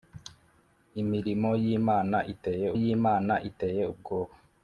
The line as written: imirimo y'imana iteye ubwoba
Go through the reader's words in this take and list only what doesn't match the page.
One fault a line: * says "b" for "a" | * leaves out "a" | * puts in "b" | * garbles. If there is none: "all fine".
* puts in "y'imana iteye"